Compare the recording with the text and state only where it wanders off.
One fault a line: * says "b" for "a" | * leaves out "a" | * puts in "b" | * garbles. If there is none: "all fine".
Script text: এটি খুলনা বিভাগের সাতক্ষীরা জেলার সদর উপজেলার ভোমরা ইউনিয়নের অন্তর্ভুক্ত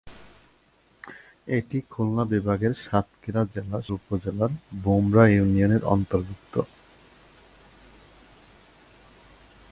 * leaves out "সদর"